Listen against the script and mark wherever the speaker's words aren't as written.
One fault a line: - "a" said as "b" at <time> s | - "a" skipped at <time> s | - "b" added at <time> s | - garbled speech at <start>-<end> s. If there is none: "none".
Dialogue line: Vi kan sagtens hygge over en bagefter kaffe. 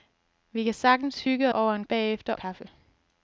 none